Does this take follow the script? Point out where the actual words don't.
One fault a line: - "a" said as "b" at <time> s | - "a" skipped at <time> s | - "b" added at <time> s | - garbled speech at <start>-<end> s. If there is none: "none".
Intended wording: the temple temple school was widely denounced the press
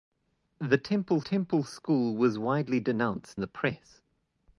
none